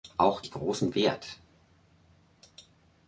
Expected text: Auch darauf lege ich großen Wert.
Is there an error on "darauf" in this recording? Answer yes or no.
yes